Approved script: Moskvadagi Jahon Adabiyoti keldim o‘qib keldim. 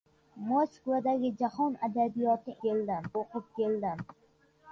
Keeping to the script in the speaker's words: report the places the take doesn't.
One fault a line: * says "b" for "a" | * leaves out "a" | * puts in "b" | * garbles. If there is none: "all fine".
all fine